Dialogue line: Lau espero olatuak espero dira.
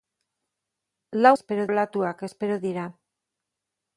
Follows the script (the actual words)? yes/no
yes